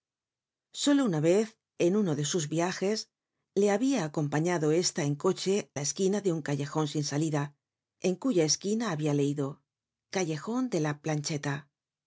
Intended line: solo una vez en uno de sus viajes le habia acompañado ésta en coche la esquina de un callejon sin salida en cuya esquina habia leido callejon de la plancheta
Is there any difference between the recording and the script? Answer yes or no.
no